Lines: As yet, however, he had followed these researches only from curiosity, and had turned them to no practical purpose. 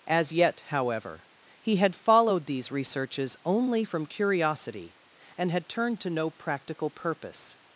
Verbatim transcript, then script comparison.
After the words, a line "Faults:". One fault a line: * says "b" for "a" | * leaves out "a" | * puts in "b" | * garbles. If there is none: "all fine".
As yet, however, he had followed these researches only from curiosity, and had turned to no practical purpose.
Faults:
* leaves out "them"